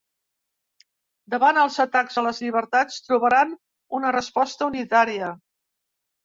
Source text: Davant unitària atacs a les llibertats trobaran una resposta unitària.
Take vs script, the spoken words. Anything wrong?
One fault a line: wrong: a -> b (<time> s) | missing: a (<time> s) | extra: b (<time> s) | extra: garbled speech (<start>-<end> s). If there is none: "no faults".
wrong: unitària -> els (1.6 s)